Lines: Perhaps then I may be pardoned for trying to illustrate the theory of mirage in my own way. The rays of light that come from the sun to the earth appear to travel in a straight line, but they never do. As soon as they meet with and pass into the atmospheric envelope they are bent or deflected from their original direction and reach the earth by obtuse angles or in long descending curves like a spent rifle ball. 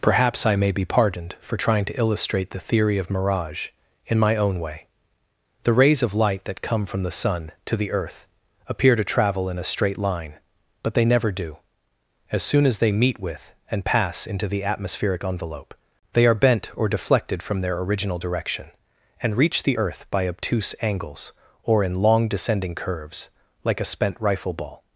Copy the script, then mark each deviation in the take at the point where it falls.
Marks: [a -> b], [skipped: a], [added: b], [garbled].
Perhaps [skipped: then] I may be pardoned for trying to illustrate the theory of mirage in my own way. The rays of light that come from the sun to the earth appear to travel in a straight line, but they never do. As soon as they meet with and pass into the atmospheric envelope they are bent or deflected from their original direction and reach the earth by obtuse angles or in long descending curves like a spent rifle ball.